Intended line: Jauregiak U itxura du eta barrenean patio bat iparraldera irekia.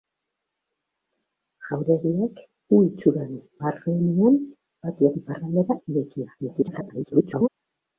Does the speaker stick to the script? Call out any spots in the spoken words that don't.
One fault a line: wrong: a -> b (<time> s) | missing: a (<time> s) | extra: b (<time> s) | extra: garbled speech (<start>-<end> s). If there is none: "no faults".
missing: eta (3.4 s)
missing: bat (5.1 s)
extra: garbled speech (6.4-7.5 s)